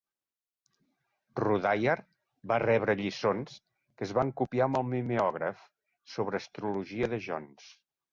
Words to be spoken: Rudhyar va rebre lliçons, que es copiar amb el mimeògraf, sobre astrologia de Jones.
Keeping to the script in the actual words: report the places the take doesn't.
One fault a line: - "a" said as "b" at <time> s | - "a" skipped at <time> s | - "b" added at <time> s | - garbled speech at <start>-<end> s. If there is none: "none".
- "van" added at 4.2 s